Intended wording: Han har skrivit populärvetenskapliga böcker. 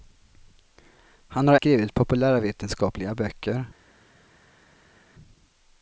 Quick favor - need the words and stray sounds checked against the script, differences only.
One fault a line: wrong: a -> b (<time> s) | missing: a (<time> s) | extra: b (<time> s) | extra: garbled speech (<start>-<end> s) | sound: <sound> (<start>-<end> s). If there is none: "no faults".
no faults